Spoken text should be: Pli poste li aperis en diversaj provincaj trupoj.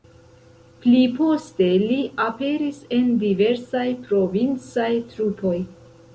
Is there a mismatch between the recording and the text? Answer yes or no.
no